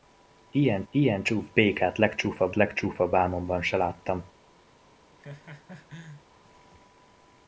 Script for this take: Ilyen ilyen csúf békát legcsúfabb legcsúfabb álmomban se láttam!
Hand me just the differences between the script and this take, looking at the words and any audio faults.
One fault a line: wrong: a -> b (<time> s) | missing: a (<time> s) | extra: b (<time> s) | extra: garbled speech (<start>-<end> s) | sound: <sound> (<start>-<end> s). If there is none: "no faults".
sound: laugh (5.2-6.2 s)